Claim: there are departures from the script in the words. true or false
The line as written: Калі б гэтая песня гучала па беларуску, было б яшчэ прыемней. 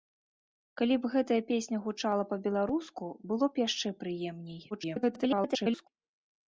true